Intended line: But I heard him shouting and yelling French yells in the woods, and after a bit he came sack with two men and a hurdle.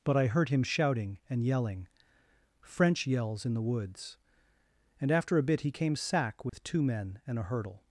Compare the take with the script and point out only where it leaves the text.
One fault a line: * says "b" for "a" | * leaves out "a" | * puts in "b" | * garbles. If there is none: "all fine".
all fine